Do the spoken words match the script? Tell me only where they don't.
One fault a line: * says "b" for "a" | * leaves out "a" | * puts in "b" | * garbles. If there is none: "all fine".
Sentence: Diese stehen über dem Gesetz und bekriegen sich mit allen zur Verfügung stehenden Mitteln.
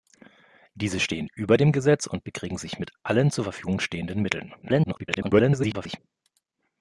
* garbles